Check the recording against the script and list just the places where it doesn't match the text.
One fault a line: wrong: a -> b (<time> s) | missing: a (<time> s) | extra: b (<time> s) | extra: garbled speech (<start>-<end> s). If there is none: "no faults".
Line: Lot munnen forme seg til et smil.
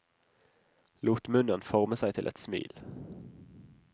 no faults